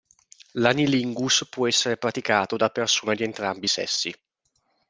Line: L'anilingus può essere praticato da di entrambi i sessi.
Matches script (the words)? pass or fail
fail